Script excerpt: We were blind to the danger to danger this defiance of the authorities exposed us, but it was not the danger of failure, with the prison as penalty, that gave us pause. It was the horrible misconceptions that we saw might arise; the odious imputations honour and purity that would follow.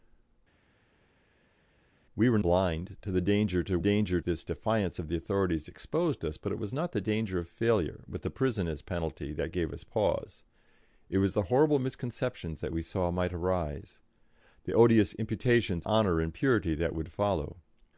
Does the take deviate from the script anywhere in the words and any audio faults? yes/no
no